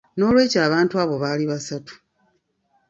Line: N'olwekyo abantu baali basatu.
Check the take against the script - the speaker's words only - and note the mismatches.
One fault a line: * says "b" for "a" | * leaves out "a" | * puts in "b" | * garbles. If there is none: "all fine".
* puts in "abo"